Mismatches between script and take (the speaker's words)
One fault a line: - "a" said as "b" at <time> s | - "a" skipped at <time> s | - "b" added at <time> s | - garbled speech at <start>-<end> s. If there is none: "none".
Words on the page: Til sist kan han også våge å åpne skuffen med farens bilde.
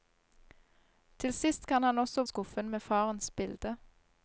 - "våge å åpne" skipped at 2.2 s